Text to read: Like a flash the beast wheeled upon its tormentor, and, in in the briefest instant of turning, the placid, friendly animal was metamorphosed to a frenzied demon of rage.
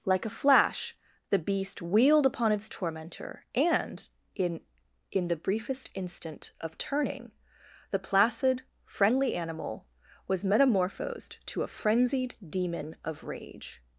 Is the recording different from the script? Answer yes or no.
no